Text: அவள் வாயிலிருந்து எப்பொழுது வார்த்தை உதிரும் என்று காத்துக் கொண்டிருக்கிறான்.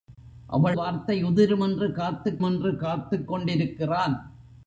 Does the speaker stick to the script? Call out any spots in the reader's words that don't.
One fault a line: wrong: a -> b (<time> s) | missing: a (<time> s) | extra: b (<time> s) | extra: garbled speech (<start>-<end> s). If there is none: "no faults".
wrong: வாயிலிருந்து எப்பொழுது வார்த்தை உதிரும் -> வார்த்தை உதிரும் என்று காத்துக் (0.7 s)